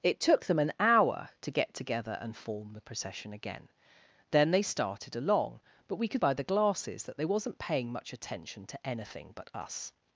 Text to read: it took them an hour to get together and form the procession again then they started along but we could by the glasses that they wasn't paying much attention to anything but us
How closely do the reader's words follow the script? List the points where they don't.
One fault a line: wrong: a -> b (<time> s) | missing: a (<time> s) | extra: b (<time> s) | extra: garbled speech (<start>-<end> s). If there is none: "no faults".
no faults